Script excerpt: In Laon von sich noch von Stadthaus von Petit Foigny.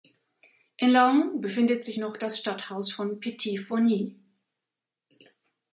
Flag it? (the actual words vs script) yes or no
yes